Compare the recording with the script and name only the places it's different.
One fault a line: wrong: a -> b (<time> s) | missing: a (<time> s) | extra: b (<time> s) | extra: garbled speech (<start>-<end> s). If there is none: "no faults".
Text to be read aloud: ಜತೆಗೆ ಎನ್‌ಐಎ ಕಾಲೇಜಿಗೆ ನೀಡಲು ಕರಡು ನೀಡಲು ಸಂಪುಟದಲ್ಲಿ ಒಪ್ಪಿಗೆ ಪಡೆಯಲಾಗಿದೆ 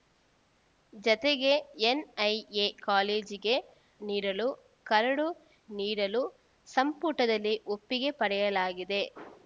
no faults